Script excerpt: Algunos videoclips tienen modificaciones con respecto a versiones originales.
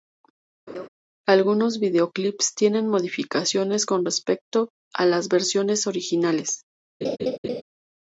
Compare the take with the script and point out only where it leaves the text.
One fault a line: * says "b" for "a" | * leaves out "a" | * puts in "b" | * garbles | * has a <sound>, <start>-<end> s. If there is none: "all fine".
* has a laugh, 0.7-0.9 s
* puts in "las"
* has a laugh, 7.0-7.6 s